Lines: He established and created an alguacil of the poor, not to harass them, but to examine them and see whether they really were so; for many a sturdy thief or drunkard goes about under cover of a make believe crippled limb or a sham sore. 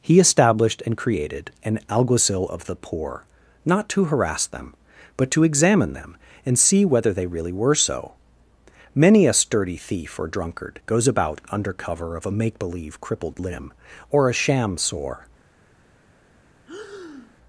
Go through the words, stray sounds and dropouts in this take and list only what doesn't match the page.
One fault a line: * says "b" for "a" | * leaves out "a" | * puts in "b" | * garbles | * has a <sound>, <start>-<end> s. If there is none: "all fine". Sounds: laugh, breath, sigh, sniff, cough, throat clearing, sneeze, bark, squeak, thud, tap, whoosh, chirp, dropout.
* leaves out "for"
* has a breath, 16.7-17.4 s